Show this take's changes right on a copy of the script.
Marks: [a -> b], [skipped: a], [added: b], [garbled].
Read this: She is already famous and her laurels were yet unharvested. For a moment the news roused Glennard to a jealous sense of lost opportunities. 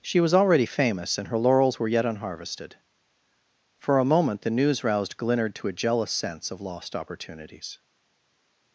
She [is -> was] already famous and her laurels were yet unharvested. For a moment the news roused Glennard to a jealous sense of lost opportunities.